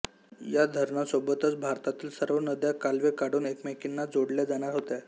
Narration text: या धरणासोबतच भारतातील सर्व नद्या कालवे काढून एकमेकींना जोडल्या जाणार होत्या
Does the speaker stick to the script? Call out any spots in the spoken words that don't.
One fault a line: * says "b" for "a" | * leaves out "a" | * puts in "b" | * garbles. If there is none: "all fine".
all fine